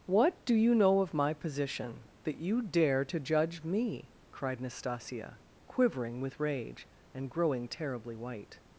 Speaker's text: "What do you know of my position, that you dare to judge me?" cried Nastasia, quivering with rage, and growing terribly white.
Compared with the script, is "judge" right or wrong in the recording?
right